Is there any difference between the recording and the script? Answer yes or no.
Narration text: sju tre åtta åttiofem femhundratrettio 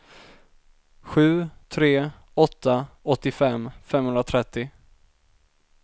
no